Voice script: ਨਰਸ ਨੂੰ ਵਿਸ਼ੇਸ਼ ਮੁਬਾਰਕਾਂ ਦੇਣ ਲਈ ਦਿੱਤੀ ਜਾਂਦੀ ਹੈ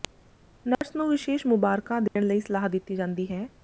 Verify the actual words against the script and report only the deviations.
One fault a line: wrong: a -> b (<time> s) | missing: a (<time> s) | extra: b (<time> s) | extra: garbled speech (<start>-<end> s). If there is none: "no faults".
extra: ਸਲਾਹ (2.4 s)